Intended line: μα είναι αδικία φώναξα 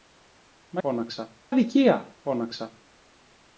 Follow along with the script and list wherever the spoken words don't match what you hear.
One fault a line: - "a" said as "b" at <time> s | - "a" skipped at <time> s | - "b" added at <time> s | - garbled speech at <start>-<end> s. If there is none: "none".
- "είναι" said as "φώναξα" at 0.8 s